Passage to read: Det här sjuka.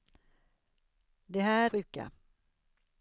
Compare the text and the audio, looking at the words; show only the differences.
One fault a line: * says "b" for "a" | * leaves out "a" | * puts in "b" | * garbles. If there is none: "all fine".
all fine